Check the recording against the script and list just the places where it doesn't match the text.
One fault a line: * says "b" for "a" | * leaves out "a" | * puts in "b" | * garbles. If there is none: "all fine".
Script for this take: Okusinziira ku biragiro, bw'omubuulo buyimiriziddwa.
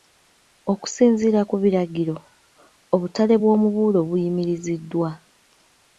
* puts in "obutale"